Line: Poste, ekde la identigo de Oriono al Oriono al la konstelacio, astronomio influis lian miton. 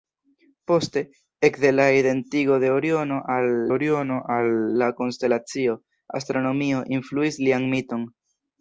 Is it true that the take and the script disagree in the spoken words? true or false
false